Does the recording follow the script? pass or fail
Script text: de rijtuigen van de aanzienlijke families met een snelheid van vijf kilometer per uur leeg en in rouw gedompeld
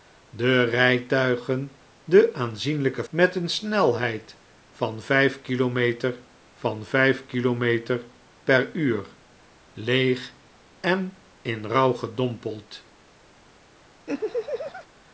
fail